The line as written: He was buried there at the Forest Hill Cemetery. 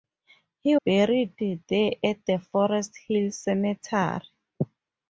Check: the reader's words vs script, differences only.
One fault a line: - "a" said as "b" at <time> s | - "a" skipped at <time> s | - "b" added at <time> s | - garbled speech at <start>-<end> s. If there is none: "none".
- "was" skipped at 0.8 s